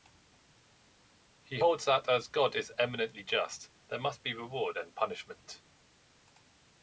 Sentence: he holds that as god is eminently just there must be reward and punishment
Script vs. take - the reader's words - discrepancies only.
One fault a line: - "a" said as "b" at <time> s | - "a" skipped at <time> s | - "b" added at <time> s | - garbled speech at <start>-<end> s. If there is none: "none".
none